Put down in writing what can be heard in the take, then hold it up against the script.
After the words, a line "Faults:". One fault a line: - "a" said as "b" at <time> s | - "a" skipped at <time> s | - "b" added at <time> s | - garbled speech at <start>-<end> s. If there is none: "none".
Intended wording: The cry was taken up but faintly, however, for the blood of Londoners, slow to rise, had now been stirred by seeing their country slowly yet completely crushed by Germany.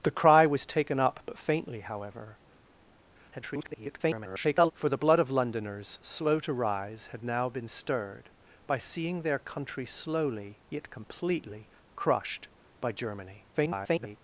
The cry was taken up but faintly, however, [garbled] for the blood of Londoners, slow to rise, had now been stirred by seeing their country slowly yet completely crushed by Germany. [garbled]
Faults:
- garbled speech at 3.3-4.7 s
- garbled speech at 13.5-14.2 s